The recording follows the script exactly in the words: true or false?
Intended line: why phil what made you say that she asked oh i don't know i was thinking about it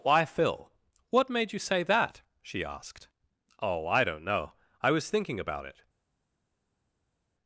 true